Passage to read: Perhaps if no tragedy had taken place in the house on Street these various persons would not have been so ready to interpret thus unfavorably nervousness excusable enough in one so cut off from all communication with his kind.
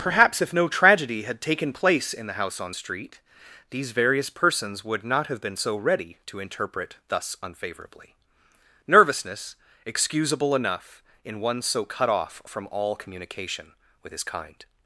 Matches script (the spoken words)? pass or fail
pass